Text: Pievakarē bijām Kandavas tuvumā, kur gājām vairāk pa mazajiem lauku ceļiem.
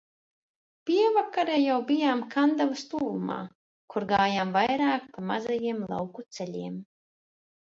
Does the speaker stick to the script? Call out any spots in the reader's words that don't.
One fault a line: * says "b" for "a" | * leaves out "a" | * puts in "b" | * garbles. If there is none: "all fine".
* puts in "jau"